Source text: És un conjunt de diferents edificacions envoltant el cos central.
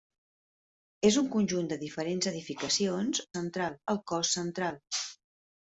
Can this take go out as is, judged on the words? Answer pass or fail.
fail